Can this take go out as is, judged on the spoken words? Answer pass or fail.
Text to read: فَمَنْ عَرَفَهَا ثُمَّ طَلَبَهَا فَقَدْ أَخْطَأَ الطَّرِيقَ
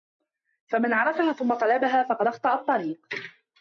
pass